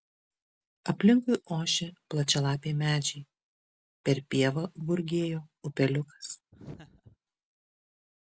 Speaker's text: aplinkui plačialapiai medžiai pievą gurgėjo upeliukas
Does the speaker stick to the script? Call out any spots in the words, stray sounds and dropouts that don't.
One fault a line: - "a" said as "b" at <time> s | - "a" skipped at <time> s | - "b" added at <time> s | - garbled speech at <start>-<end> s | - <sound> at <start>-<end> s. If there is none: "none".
- "ošė" added at 1.6 s
- "per" added at 4.1 s
- laugh at 6.5-7.2 s